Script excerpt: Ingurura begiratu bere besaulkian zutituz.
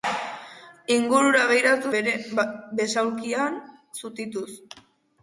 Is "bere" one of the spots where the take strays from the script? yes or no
no